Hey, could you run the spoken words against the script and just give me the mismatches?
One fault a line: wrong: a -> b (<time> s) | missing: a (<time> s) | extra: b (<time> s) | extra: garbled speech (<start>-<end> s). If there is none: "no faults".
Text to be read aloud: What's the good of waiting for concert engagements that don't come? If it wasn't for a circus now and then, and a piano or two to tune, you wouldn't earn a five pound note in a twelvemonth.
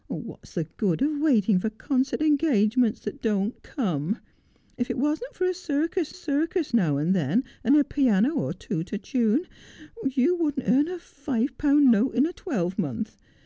extra: circus (6.1 s)